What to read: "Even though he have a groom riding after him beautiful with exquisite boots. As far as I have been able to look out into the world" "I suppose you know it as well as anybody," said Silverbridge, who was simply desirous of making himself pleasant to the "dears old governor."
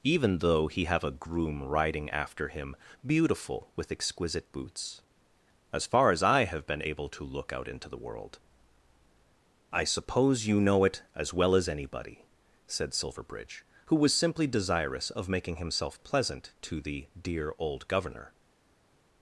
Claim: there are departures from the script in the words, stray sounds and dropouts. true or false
true